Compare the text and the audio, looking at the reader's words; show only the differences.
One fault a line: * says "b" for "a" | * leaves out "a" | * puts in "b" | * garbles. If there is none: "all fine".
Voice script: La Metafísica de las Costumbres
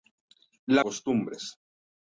* leaves out "Metafísica de las"